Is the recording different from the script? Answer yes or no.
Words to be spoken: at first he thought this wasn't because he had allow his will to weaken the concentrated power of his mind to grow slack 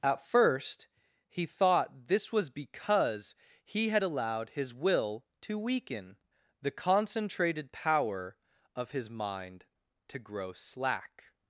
yes